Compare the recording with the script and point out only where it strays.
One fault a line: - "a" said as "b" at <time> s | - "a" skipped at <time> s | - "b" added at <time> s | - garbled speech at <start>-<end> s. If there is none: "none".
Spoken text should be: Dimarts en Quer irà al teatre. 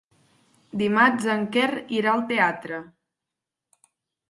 none